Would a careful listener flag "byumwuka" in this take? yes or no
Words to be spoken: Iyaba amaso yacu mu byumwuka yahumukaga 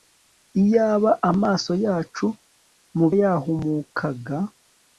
yes